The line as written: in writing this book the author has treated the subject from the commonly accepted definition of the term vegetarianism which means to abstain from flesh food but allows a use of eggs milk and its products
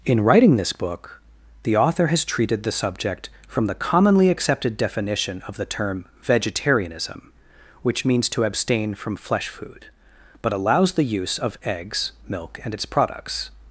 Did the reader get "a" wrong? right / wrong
wrong